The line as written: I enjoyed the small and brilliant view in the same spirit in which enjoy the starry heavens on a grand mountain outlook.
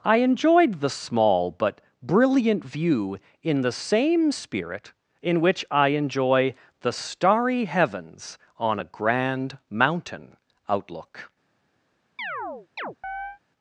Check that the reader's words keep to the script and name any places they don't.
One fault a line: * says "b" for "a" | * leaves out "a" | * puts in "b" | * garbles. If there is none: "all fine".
* says "but" for "and"
* puts in "I"